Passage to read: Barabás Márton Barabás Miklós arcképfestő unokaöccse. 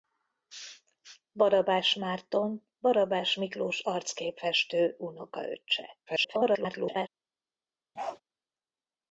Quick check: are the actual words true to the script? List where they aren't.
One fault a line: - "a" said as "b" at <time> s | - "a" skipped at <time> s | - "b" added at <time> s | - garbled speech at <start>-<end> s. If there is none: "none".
- garbled speech at 6.1-7.1 s